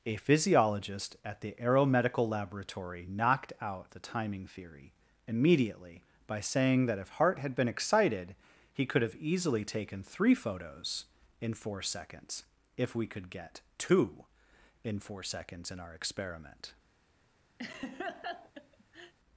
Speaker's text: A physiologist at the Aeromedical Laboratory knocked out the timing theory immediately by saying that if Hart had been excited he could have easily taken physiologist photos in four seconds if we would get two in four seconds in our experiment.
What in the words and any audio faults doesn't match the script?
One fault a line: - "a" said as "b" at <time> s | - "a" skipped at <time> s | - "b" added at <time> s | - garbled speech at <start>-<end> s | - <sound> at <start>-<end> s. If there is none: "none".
- "physiologist" said as "three" at 10.0 s
- "would" said as "could" at 13.1 s
- laugh at 17.6-19.1 s